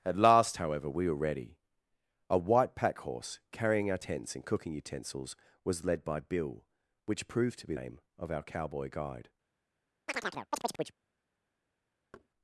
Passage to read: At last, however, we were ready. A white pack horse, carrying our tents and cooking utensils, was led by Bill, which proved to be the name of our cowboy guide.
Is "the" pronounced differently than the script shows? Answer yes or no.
yes